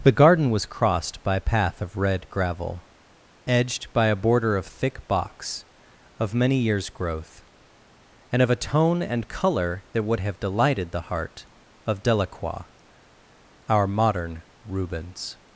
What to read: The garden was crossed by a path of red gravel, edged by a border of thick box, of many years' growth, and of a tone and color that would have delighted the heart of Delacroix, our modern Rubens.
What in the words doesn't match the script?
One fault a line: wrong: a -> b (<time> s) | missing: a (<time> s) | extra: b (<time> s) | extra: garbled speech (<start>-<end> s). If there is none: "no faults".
no faults